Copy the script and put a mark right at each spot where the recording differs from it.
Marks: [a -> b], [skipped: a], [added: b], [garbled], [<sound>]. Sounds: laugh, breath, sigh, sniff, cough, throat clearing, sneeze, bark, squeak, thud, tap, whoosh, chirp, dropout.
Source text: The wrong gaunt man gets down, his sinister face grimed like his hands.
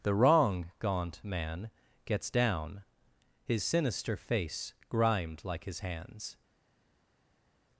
The wrong gaunt man gets down, his sinister face grimed like his hands.